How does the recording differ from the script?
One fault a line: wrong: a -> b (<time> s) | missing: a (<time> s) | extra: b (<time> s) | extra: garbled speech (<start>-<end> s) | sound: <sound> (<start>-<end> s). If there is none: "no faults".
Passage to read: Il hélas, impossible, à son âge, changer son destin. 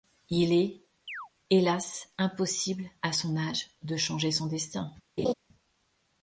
extra: est (0.5 s)
sound: chirp (1.1-1.3 s)
extra: de (3.8 s)
sound: laugh (5.2-5.3 s)